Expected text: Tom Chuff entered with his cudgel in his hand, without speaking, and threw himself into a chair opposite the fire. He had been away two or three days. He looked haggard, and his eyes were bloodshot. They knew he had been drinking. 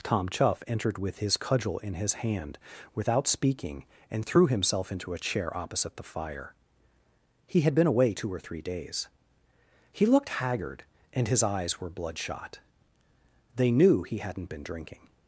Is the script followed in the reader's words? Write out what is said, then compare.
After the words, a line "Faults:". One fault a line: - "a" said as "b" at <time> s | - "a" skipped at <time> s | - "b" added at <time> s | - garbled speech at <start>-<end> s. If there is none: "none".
Tom Chuff entered with his cudgel in his hand, without speaking, and threw himself into a chair opposite the fire. He had been away two or three days. He looked haggard, and his eyes were bloodshot. They knew he hadn't been drinking.
Faults:
- "had" said as "hadn't" at 14.2 s